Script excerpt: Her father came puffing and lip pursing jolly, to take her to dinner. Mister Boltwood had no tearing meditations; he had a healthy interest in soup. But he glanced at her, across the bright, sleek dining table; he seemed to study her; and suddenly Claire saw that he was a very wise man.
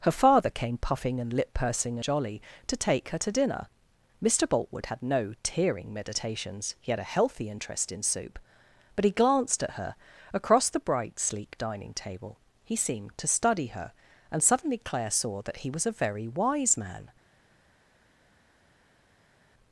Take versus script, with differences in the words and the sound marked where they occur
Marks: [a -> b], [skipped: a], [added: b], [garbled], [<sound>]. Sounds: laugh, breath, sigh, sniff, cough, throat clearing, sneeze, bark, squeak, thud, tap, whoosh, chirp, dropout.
Her father came puffing and lip pursing jolly, to take her to dinner. Mister Boltwood had no tearing meditations; he had a healthy interest in soup. But he glanced at her, across the bright, sleek dining table; he seemed to study her; and suddenly Claire saw that he was a very wise man.